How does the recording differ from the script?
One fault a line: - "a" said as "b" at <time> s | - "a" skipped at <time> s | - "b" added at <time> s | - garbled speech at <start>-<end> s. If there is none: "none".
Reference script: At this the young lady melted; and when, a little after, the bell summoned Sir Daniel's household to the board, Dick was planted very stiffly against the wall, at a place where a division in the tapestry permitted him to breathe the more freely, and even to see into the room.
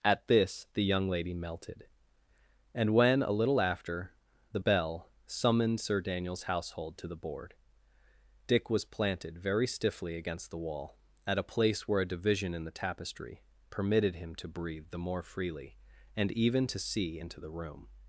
none